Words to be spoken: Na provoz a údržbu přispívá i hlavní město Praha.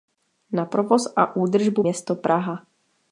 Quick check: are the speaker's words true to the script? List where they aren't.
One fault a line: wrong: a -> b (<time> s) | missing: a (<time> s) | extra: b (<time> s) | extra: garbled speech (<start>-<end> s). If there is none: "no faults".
missing: přispívá i hlavní (1.8 s)